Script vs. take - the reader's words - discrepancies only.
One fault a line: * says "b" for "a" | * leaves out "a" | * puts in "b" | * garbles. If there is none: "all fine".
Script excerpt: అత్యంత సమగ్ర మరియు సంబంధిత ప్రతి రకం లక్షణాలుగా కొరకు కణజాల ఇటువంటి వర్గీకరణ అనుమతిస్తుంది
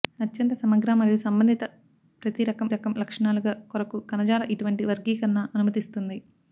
* puts in "రకం"